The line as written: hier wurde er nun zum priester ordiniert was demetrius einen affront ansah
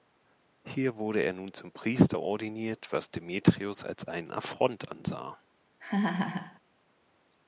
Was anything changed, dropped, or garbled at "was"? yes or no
no